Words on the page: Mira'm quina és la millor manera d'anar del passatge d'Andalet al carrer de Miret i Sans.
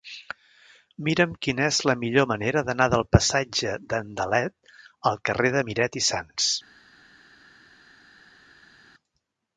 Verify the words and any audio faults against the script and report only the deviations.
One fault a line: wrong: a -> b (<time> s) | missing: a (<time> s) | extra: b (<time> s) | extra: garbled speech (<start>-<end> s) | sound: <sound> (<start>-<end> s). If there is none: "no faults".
no faults